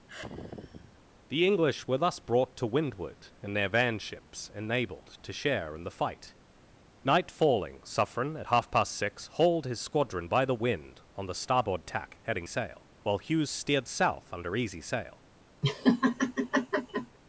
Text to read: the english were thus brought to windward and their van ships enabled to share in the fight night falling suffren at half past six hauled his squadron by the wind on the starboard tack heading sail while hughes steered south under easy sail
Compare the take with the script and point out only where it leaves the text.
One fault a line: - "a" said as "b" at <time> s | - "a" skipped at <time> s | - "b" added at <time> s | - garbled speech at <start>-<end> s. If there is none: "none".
none